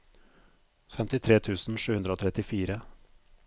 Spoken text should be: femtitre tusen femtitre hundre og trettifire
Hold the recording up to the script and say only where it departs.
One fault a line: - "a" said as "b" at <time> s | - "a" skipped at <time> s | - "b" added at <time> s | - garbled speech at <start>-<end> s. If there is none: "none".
- "femtitre" said as "sju" at 1.8 s